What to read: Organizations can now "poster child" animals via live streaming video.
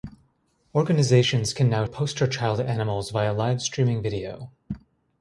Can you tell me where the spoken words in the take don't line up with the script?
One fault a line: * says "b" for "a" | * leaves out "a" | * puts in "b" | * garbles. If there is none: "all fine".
all fine